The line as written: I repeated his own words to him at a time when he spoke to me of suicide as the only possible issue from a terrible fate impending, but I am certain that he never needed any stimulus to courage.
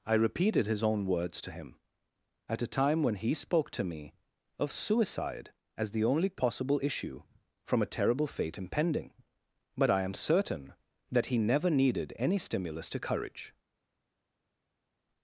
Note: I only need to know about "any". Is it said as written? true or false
true